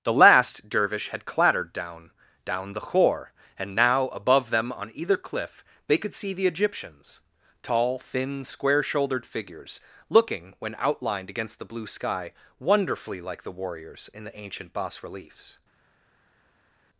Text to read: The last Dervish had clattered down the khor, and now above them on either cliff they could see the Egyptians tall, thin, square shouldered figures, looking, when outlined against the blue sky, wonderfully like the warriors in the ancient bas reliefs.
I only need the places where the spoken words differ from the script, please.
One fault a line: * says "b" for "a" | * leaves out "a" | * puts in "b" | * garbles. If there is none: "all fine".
* puts in "down"